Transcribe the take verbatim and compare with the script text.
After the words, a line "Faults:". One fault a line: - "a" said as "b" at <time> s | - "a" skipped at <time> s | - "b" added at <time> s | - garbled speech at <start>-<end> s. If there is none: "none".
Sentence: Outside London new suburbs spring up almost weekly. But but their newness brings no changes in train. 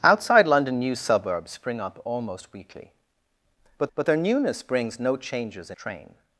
Outside London new suburbs spring up almost weekly. But but their newness brings no changes in train.
Faults:
none